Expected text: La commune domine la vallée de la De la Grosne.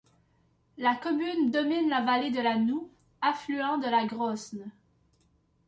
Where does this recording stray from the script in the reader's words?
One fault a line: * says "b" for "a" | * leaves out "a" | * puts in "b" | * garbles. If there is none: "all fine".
* puts in "Noue affluent"